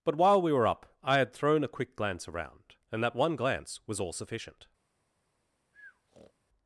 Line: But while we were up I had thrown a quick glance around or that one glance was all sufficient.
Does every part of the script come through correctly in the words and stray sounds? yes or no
no